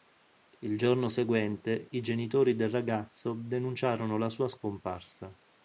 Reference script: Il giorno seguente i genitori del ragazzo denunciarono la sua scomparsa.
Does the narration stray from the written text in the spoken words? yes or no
no